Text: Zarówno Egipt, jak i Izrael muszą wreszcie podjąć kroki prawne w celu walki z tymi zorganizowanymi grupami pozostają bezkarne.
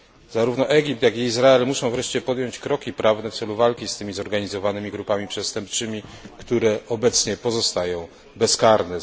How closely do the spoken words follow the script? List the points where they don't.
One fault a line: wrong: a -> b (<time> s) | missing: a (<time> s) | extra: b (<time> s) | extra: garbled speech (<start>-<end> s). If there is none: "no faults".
extra: przestępczymi które obecnie (5.3 s)